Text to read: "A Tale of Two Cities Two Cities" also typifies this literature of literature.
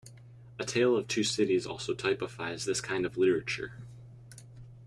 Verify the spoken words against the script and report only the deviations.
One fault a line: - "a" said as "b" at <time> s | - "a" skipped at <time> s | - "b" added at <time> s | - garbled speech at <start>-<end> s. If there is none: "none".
- "Two Cities" skipped at 1.7 s
- "literature" said as "kind" at 2.8 s